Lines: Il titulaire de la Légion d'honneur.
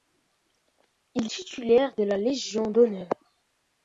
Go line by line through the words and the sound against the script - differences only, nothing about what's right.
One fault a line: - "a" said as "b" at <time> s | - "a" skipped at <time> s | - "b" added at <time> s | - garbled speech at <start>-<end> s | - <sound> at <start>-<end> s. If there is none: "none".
none